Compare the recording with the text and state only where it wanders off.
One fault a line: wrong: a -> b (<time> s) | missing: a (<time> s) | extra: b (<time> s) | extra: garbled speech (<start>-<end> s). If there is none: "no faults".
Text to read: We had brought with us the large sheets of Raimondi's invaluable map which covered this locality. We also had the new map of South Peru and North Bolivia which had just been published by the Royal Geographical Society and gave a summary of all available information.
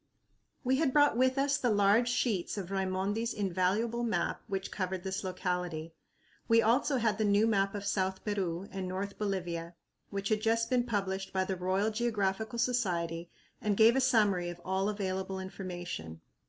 no faults